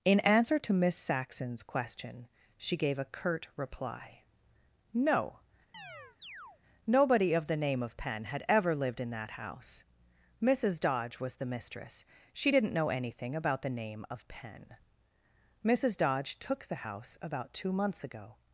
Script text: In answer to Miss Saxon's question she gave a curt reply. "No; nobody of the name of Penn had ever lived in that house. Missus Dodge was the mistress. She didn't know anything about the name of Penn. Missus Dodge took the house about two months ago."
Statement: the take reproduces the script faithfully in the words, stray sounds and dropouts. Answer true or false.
false